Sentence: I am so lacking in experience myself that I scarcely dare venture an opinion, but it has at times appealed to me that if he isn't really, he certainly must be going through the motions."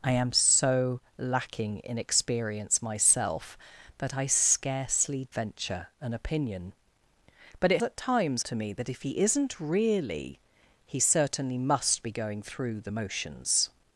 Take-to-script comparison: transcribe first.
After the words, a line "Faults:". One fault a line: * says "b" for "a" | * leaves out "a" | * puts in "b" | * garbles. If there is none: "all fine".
I am so lacking in experience myself that I scarcely venture an opinion, but it at times to me that if he isn't really, he certainly must be going through the motions."
Faults:
* leaves out "dare"
* leaves out "has"
* leaves out "appealed"